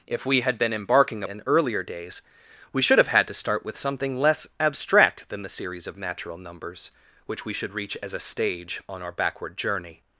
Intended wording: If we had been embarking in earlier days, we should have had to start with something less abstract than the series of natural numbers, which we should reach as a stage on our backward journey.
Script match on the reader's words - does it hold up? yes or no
yes